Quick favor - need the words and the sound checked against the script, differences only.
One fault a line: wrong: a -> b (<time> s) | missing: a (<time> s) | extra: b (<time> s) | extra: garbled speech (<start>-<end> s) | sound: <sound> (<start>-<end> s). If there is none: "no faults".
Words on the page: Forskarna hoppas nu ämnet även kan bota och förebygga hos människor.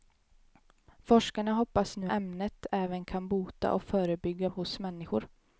no faults